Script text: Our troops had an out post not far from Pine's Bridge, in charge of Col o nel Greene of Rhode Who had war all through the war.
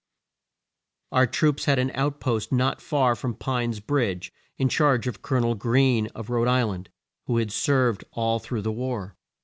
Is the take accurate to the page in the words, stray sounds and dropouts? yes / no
no